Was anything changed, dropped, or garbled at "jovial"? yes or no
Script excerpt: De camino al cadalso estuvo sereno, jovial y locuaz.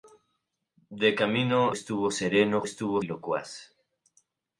yes